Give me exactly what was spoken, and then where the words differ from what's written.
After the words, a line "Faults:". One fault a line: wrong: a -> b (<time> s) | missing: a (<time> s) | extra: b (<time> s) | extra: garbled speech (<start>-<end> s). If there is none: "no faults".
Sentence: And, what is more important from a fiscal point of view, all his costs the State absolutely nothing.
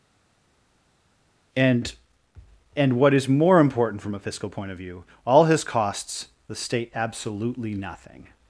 And and, what is more important from a fiscal point of view, all his costs the State absolutely nothing.
Faults:
extra: and (2.7 s)